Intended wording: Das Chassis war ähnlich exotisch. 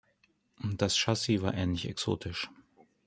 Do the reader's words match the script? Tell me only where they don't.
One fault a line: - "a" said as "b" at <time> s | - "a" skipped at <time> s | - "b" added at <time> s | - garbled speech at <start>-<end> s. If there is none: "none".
none